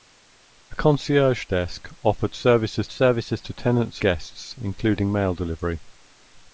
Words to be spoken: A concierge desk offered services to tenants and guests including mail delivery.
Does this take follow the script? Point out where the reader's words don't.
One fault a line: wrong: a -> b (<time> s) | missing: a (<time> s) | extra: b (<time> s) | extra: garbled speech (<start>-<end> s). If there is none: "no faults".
extra: services (2.9 s)
missing: and (4.0 s)